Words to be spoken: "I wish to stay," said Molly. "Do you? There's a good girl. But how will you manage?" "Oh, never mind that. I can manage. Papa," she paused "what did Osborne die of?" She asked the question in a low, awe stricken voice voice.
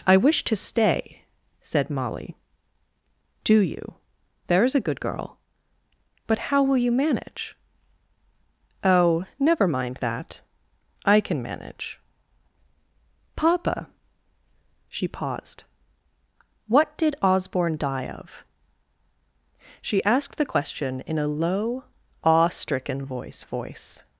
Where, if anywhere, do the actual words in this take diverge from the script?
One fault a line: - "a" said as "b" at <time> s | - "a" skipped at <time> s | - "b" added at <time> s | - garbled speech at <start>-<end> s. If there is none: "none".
none